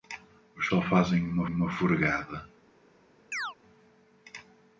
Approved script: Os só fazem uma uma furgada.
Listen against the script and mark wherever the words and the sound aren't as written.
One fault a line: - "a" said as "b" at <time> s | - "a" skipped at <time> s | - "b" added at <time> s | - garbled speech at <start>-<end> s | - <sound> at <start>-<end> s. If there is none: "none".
- chirp at 3.3-3.6 s